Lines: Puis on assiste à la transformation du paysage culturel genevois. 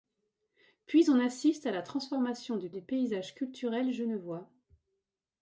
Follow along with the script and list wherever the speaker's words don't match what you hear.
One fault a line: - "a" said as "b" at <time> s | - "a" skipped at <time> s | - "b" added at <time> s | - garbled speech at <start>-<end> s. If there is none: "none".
- "du" added at 2.7 s